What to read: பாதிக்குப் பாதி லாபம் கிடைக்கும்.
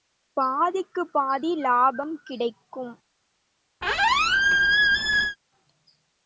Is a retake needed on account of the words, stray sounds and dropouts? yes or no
yes